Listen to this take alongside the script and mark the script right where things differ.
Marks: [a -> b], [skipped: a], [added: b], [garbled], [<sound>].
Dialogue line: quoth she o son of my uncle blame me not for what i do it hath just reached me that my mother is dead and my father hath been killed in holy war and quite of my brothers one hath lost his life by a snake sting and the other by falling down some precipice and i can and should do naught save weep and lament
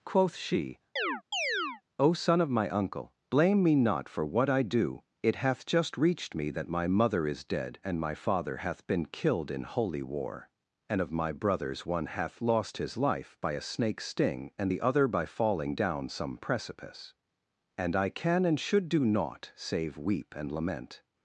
quoth she [chirp] o son of my uncle blame me not for what i do it hath just reached me that my mother is dead and my father hath been killed in holy war and [skipped: quite] of my brothers one hath lost his life by a snake sting and the other by falling down some precipice and i can and should do naught save weep and lament